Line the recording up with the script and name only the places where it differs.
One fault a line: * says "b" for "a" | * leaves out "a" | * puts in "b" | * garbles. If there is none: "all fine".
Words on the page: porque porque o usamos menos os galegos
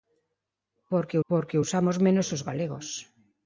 all fine